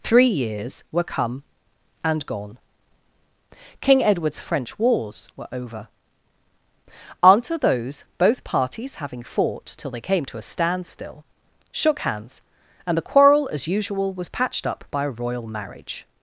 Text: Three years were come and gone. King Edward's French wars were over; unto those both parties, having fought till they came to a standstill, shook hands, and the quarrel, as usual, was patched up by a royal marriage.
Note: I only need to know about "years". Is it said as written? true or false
true